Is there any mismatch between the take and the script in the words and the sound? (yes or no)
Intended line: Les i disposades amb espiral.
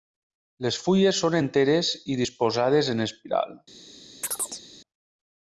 yes